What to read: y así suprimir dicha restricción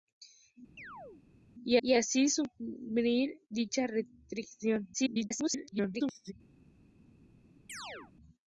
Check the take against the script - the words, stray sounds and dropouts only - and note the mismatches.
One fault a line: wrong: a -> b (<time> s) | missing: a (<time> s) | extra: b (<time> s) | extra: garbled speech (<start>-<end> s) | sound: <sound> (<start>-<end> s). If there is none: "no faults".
sound: chirp (0.8-1.2 s)
extra: y (1.8 s)
extra: garbled speech (4.9-6.3 s)
sound: chirp (7.7-8.1 s)